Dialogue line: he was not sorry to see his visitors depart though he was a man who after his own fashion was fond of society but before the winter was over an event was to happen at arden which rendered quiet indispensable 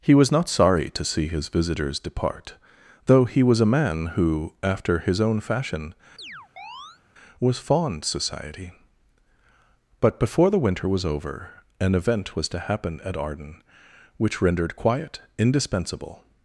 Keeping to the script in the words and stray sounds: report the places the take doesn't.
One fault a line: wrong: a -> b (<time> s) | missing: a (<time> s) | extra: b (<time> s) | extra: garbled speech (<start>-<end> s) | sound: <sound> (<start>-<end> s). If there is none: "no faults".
sound: chirp (6.2-7.0 s)
missing: of (8.0 s)